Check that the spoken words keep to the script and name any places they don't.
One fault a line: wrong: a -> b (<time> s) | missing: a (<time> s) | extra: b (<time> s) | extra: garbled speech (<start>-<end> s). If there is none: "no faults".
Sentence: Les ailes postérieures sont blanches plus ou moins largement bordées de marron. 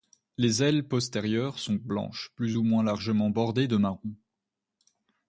no faults